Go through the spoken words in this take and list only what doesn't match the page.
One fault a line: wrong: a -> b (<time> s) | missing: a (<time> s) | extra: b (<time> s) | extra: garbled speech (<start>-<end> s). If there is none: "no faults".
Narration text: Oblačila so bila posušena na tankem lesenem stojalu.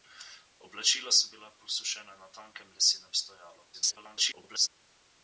extra: garbled speech (3.7-4.7 s)